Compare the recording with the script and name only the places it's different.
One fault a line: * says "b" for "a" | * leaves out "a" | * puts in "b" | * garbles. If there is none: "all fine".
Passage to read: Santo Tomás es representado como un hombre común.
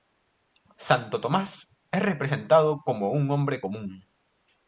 all fine